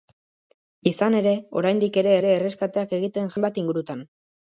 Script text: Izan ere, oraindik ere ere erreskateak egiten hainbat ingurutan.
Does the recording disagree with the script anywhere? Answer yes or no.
no